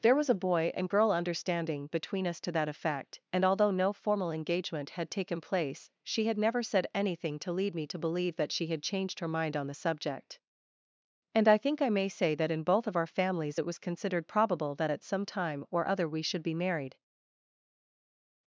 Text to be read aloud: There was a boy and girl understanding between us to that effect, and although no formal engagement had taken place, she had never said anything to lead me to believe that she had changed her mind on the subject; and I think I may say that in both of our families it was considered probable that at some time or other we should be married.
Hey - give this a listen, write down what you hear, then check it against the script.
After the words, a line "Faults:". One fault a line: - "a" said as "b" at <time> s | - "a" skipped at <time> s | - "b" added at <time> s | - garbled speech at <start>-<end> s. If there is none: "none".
There was a boy and girl understanding between us to that effect, and although no formal engagement had taken place, she had never said anything to lead me to believe that she had changed her mind on the subject; and I think I may say that in both of our families it was considered probable that at some time or other we should be married.
Faults:
none